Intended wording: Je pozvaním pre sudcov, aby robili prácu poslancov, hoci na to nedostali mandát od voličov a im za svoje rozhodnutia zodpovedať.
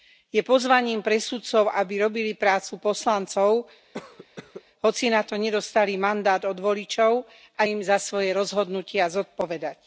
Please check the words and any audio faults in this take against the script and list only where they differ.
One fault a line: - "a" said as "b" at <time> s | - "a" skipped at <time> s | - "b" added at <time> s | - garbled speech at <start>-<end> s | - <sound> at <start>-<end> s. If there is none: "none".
- cough at 3.9-4.6 s